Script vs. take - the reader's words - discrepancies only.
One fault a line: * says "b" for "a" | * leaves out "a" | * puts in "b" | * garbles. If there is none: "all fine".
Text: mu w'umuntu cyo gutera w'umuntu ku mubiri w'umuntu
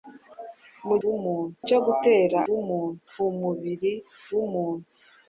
all fine